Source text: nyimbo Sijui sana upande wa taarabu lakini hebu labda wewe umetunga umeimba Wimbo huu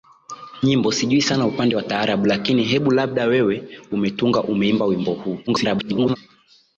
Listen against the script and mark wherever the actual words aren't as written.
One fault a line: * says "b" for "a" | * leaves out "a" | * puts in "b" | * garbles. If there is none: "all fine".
* garbles